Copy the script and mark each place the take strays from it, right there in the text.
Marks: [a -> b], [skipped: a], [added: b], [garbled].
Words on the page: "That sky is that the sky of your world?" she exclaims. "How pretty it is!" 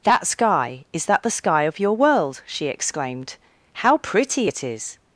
"That sky is that the sky of your world?" she [exclaims. -> exclaimed] "How pretty it is!"